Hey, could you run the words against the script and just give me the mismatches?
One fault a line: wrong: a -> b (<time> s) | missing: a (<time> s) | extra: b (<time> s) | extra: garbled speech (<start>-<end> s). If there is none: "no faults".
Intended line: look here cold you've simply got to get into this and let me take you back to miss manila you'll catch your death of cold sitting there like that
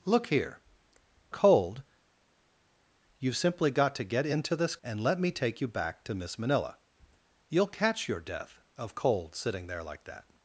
no faults